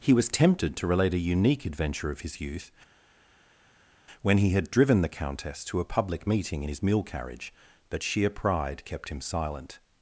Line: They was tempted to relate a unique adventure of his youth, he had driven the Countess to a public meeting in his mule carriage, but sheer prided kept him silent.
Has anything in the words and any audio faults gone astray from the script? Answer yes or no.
yes